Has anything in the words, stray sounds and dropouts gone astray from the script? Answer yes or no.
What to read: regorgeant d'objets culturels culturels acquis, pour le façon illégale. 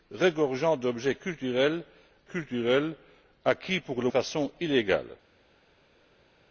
no